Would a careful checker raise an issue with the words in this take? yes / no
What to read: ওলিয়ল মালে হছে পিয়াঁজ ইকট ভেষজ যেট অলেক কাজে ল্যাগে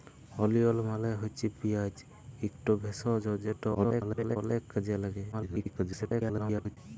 yes